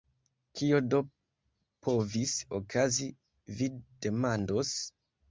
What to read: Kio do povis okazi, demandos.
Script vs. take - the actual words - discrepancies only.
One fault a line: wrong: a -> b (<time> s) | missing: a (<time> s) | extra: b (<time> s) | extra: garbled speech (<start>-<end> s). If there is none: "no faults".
extra: vi (3.6 s)